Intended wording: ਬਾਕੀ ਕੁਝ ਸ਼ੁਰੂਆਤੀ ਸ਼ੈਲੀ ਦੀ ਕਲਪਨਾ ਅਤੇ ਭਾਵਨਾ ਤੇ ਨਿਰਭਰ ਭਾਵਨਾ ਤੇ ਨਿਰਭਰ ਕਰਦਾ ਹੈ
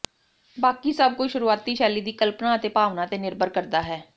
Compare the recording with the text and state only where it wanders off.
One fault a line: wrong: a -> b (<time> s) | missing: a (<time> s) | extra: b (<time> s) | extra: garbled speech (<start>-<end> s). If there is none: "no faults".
extra: ਸਭ (0.9 s)
missing: ਭਾਵਨਾ ਤੇ ਨਿਰਭਰ (3.5 s)